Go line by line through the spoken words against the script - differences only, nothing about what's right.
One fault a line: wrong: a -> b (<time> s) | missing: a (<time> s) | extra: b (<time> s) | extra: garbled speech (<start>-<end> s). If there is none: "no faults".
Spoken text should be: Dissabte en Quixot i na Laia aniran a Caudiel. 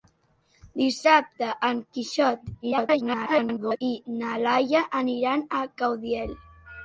extra: garbled speech (2.6-3.8 s)